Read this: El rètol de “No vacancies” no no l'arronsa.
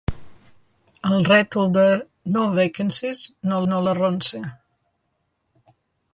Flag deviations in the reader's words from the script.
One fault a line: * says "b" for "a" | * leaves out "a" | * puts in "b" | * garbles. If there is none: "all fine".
all fine